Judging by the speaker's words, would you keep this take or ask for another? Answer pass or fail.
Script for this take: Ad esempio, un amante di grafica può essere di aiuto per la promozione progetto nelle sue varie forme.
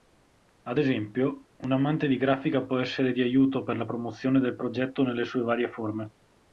fail